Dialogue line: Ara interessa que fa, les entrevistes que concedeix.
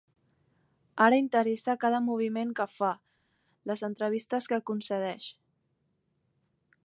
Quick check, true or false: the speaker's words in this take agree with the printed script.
false